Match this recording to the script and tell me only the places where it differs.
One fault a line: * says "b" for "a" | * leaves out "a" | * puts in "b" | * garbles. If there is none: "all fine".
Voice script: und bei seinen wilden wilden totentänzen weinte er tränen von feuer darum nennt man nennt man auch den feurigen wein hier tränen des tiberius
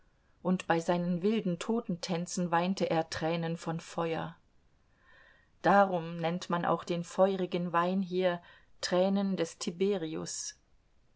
* leaves out "wilden"
* leaves out "nennt man"